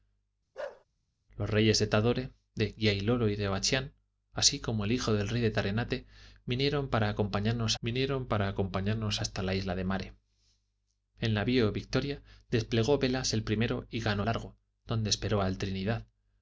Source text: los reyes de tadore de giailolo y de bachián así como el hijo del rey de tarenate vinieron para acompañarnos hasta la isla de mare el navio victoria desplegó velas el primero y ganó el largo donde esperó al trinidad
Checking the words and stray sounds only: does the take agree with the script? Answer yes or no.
no